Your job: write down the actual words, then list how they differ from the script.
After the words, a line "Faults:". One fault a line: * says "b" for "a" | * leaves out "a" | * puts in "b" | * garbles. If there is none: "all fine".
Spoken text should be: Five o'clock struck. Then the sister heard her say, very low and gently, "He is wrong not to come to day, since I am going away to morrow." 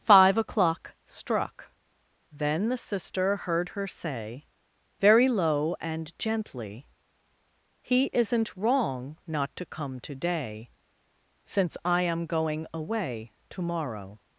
Five o'clock struck. Then the sister heard her say, very low and gently, "He isn't wrong not to come to day, since I am going away to morrow."
Faults:
* says "isn't" for "is"